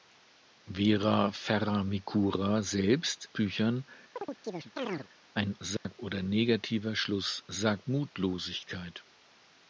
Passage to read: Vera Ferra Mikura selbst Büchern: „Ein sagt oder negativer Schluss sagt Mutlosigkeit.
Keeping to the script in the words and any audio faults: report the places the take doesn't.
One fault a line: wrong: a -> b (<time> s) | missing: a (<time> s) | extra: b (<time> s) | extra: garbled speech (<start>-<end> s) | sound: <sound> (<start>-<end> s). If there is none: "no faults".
sound: chirp (4.2-5.1 s)
sound: dropout (5.8-5.8 s)